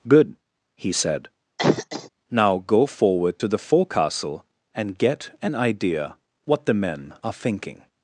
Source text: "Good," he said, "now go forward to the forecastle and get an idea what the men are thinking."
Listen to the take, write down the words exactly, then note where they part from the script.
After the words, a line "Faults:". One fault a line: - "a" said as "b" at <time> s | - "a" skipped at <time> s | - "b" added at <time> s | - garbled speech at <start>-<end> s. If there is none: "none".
"Good," he said, "now go forward to the forecastle and get an idea what the men are thinking."
Faults:
none